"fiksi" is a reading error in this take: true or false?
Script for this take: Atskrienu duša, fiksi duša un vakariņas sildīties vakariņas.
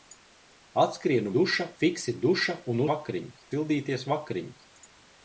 false